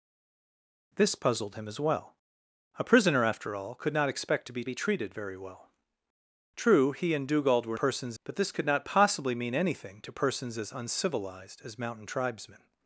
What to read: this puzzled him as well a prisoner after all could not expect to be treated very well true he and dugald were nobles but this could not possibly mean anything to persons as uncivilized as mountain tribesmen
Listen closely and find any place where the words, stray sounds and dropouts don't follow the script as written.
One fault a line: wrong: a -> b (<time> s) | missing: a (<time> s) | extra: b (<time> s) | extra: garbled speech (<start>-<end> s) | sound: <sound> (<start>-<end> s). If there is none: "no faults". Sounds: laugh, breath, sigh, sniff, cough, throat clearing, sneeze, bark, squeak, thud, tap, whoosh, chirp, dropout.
extra: be (4.6 s)
wrong: nobles -> persons (7.7 s)